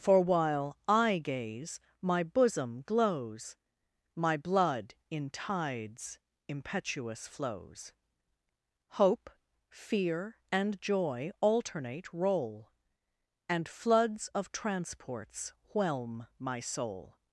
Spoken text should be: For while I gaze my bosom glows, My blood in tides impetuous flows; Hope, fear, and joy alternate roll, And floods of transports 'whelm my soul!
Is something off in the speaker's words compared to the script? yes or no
no